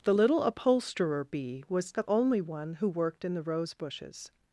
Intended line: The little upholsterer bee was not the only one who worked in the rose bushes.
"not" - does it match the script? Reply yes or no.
no